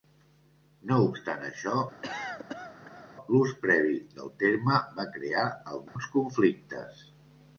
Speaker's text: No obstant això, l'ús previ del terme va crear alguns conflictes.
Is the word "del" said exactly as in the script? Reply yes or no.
yes